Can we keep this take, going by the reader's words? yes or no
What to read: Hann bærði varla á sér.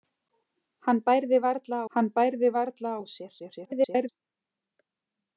no